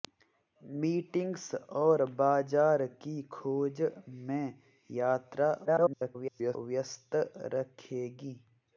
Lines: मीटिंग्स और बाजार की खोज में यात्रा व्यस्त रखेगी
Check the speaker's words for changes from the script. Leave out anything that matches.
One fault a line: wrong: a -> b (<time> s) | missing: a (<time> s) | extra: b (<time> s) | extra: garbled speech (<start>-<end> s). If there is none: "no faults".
extra: garbled speech (5.6-6.6 s)